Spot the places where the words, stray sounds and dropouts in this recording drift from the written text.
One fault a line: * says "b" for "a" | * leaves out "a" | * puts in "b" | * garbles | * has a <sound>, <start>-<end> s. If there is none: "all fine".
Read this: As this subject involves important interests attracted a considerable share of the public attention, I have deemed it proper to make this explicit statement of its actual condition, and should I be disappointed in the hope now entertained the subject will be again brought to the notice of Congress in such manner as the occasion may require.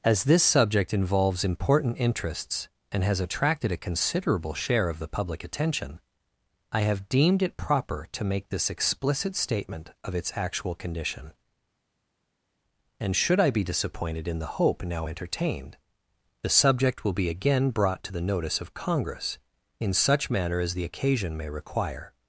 * puts in "and has"